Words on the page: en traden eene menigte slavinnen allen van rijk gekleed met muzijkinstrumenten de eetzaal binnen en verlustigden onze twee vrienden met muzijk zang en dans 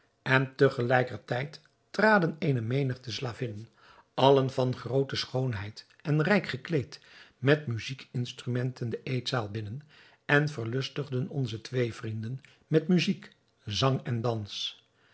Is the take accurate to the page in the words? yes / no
no